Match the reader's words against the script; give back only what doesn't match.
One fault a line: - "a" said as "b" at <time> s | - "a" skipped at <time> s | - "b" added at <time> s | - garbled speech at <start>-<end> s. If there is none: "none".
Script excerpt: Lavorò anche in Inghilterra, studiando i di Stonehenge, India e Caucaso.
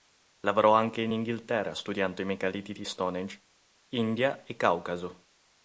- "megaliti" added at 2.2 s